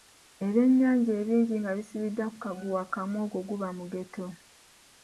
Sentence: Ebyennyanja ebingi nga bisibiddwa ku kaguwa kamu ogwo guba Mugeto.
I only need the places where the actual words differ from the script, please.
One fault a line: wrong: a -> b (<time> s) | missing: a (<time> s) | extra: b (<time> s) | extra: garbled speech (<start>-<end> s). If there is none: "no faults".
no faults